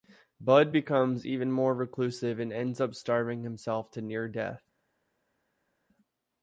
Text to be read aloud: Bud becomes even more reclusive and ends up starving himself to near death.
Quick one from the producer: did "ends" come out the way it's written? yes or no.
yes